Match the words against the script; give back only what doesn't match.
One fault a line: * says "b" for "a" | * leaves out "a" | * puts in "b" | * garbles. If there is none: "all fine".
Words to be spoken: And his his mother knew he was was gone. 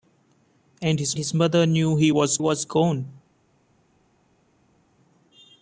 all fine